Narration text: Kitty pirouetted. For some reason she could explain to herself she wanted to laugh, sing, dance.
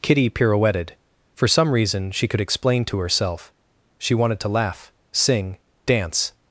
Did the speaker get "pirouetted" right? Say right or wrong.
right